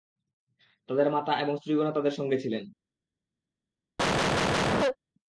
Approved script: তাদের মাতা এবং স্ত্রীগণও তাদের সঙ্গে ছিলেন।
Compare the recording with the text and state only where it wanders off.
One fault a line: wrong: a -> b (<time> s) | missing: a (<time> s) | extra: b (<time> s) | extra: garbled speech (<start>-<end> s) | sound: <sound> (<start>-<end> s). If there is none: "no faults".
sound: cough (4.0-5.0 s)